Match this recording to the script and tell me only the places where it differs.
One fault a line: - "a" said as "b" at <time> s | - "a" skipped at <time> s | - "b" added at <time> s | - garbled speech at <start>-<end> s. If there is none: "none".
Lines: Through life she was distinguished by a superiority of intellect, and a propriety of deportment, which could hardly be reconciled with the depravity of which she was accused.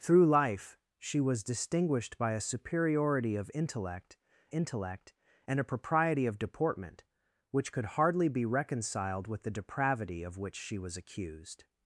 - "intellect" added at 4.5 s